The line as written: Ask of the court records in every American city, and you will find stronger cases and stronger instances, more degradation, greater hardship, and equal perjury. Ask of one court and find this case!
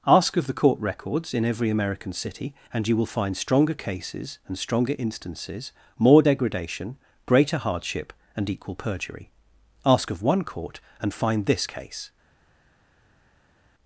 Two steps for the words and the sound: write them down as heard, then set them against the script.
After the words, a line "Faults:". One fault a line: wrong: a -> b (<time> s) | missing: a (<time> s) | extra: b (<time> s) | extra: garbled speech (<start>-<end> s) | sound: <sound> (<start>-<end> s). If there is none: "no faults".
Ask of the court records in every American city, and you will find stronger cases and stronger instances, more degradation, greater hardship, and equal perjury. Ask of one court and find this case!
Faults:
no faults